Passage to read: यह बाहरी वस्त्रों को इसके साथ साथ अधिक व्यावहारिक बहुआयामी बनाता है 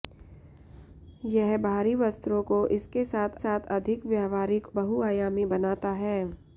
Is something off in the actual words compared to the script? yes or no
no